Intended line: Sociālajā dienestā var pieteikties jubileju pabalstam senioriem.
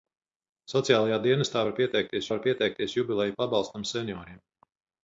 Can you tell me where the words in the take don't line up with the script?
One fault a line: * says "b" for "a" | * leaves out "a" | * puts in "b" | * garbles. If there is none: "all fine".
* puts in "var pieteikties"